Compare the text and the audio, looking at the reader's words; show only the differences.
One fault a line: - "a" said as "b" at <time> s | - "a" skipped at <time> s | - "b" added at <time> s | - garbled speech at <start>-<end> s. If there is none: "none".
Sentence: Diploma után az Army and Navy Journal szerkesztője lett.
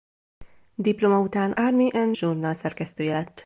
- "az" skipped at 1.5 s
- "Navy" skipped at 2.2 s